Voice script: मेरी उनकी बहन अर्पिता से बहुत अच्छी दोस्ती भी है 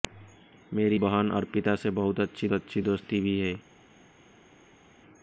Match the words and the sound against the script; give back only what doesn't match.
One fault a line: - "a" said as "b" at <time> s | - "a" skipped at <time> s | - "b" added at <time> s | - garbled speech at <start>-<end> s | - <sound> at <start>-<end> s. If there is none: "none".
- "उनकी" skipped at 1.0 s
- "अच्छी" added at 2.5 s